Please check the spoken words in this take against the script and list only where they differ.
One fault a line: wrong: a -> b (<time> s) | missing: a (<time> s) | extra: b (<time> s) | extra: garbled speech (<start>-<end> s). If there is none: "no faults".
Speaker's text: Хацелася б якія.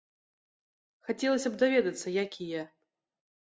extra: даведацца (1.6 s)